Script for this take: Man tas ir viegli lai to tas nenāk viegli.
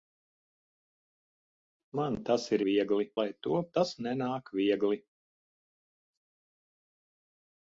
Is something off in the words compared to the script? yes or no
no